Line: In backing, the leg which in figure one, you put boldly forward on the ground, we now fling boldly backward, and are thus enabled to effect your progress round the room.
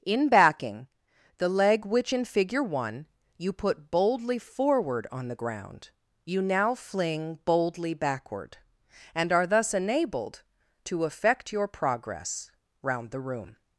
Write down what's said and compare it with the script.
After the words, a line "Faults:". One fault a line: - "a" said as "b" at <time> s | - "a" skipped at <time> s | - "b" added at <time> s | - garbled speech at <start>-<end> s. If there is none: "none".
In backing, the leg which in figure one, you put boldly forward on the ground, you now fling boldly backward, and are thus enabled to effect your progress round the room.
Faults:
- "we" said as "you" at 6.2 s